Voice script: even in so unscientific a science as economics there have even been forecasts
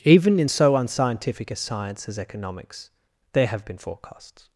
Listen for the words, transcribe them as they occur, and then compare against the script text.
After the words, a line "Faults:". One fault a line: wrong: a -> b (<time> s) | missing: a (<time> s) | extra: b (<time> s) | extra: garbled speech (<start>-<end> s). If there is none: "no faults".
even in so unscientific a science as economics there have been forecasts
Faults:
missing: even (3.6 s)